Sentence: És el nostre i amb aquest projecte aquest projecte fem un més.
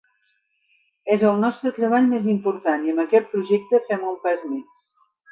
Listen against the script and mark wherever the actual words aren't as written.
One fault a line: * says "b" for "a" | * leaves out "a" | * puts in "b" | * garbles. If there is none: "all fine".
* puts in "treball més important"
* leaves out "aquest projecte"
* puts in "pas"